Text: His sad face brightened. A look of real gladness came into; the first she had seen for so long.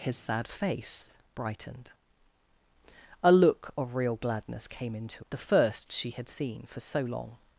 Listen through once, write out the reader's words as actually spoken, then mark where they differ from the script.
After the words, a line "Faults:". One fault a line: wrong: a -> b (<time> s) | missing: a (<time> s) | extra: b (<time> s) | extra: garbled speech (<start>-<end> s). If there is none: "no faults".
His sad face brightened. A look of real gladness came into; the first she had seen for so long.
Faults:
no faults